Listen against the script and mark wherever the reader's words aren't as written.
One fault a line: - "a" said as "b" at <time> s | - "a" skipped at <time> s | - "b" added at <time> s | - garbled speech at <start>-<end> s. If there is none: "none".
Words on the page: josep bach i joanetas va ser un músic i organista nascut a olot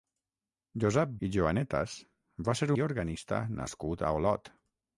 - "bach" skipped at 1.1 s
- "un músic" skipped at 2.7 s